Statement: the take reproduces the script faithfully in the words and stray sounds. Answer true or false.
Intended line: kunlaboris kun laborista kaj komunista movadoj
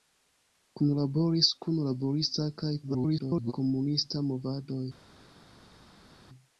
false